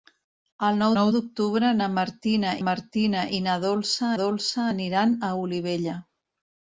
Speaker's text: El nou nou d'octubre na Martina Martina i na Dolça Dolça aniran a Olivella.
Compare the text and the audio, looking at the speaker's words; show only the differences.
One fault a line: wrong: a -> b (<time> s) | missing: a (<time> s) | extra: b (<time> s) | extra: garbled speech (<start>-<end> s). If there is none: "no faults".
no faults